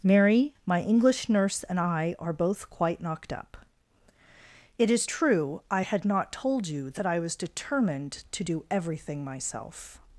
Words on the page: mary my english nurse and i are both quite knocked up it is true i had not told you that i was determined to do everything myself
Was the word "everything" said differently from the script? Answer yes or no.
no